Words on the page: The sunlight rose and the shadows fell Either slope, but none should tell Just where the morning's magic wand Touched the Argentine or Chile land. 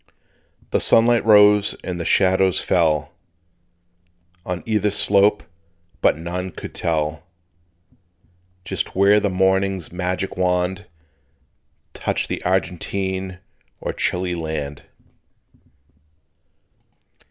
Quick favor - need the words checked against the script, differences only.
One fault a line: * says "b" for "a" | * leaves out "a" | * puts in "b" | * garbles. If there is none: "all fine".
* puts in "On"
* says "could" for "should"